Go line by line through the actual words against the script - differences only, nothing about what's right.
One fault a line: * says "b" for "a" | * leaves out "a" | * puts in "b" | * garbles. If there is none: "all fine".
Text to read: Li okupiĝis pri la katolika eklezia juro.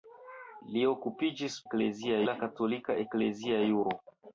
* says "eklezia" for "pri"